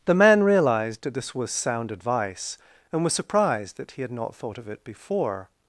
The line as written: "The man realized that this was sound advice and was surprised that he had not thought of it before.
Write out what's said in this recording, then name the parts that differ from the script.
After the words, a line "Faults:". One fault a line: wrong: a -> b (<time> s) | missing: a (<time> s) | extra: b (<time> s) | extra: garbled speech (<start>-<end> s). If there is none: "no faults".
"The man realized that this was sound advice and was surprised that he had not thought of it before.
Faults:
no faults